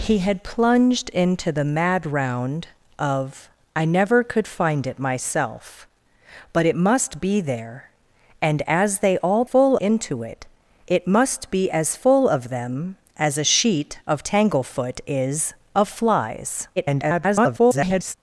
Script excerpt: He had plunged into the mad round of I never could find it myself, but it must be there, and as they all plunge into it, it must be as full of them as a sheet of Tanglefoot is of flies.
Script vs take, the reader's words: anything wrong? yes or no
yes